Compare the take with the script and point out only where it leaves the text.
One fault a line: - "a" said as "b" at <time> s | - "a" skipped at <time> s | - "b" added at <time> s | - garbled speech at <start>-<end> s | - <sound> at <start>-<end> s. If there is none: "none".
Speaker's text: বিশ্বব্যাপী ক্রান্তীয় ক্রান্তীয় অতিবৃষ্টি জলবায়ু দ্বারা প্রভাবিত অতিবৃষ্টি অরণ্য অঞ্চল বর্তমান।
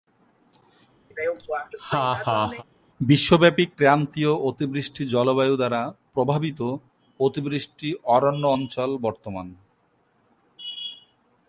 - laugh at 1.1-2.6 s
- "ক্রান্তীয়" skipped at 4.3 s